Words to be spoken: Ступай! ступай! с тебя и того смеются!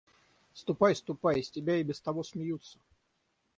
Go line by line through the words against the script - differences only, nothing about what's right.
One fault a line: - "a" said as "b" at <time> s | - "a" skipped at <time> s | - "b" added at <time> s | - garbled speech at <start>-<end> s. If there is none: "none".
- "без" added at 1.8 s